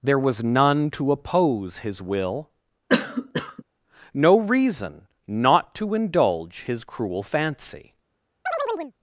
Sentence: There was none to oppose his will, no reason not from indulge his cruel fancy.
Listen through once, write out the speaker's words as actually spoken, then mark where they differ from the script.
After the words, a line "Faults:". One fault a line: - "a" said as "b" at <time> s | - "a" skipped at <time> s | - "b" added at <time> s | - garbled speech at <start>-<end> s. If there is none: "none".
There was none to oppose his will, no reason not to indulge his cruel fancy.
Faults:
- "from" said as "to" at 5.7 s